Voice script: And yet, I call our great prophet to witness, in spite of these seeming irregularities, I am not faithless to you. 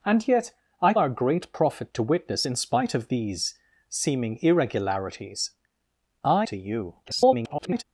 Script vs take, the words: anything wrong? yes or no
yes